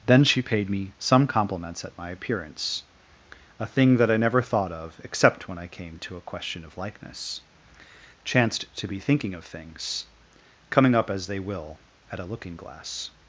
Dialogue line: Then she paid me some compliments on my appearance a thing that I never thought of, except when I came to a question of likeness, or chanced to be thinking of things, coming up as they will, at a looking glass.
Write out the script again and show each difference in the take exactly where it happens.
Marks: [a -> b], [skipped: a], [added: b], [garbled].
Then she paid me some compliments [on -> at] my appearance a thing that I never thought of, except when I came to a question of likeness, [skipped: or] chanced to be thinking of things, coming up as they will, at a looking glass.